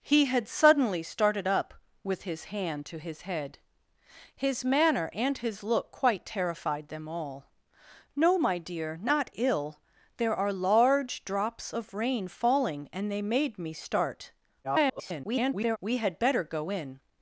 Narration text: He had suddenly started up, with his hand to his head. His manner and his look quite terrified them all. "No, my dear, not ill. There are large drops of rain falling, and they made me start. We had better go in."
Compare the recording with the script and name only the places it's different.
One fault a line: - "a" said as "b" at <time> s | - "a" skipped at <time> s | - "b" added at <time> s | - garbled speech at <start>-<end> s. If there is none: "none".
- garbled speech at 14.6-15.8 s